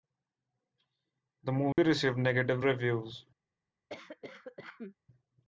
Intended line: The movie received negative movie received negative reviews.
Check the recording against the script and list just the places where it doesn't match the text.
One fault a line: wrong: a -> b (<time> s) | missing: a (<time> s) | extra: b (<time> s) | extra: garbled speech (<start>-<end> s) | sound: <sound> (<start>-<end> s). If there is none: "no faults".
sound: dropout (1.7-1.8 s)
missing: movie received negative (2.6 s)
sound: cough (3.9-4.9 s)